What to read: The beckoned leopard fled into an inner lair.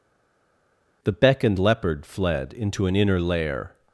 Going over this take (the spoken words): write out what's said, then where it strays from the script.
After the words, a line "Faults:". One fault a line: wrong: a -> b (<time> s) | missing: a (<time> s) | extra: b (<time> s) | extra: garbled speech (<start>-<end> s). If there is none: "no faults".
The beckoned leopard fled into an inner lair.
Faults:
no faults